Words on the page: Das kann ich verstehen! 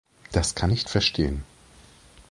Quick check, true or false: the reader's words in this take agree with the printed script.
true